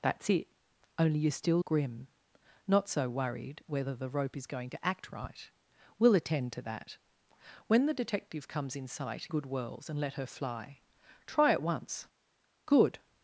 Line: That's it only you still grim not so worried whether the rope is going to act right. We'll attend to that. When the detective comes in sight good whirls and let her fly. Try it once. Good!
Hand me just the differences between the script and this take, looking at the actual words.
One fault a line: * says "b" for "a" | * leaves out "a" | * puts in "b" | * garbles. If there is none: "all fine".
all fine